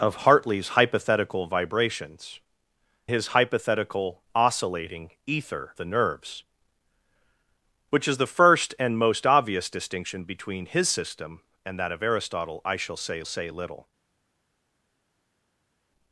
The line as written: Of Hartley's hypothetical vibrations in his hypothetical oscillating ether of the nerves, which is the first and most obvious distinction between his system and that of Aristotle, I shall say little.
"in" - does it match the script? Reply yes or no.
no